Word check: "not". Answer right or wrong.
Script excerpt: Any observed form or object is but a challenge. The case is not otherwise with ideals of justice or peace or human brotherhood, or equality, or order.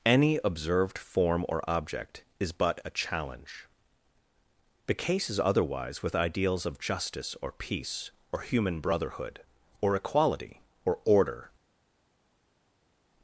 wrong